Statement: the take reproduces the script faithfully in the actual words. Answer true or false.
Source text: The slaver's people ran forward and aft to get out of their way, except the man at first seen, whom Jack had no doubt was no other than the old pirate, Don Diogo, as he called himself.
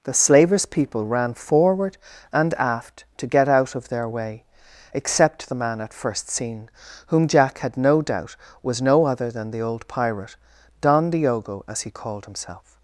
true